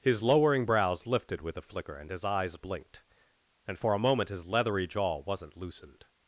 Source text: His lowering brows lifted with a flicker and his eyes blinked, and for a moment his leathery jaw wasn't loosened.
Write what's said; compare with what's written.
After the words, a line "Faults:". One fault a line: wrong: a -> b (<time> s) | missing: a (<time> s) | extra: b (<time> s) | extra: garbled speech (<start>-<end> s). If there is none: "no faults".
His lowering brows lifted with a flicker and his eyes blinked, and for a moment his leathery jaw wasn't loosened.
Faults:
no faults